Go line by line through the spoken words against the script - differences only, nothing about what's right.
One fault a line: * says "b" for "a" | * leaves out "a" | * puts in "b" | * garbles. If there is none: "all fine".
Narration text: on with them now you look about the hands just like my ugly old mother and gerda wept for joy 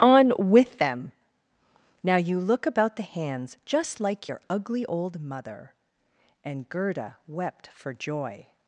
* says "your" for "my"